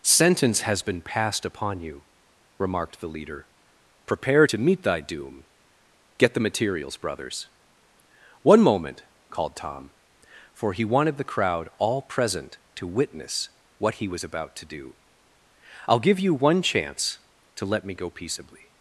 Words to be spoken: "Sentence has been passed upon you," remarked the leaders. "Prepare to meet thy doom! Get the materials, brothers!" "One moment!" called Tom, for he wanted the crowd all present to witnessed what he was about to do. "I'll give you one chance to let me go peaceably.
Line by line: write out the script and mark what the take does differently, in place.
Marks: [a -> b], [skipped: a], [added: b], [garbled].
"Sentence has been passed upon you," remarked the [leaders. -> leader] "Prepare to meet thy doom! Get the materials, brothers!" "One moment!" called Tom, for he wanted the crowd all present to [witnessed -> witness] what he was about to do. "I'll give you one chance to let me go peaceably.